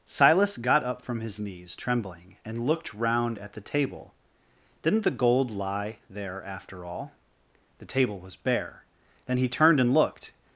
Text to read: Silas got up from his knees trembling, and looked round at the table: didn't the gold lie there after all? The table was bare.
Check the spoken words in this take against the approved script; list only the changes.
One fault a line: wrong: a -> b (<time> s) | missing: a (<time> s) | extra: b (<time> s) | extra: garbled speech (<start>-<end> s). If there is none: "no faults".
extra: Then he turned and looked (9.3 s)